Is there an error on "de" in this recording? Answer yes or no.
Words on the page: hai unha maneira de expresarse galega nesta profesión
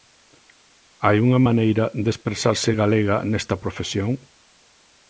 no